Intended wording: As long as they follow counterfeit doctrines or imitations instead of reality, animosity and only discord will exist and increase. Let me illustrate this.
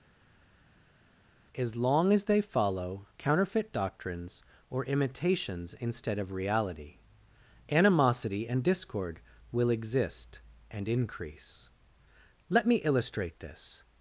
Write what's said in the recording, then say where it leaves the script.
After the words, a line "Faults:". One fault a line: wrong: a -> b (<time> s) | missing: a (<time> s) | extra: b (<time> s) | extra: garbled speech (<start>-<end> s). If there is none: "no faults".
As long as they follow counterfeit doctrines or imitations instead of reality, animosity and discord will exist and increase. Let me illustrate this.
Faults:
missing: only (8.6 s)